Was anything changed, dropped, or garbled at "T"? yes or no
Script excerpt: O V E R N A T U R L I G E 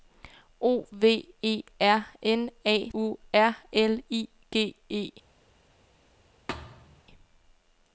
yes